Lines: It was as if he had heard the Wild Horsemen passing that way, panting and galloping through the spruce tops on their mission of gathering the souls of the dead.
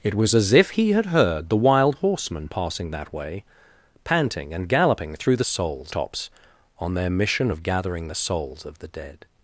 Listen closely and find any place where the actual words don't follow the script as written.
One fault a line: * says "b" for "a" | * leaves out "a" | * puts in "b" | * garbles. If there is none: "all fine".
* says "souls" for "spruce"